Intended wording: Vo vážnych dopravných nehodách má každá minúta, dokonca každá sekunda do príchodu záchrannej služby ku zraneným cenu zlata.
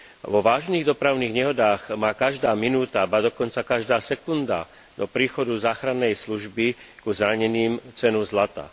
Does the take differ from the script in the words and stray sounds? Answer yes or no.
yes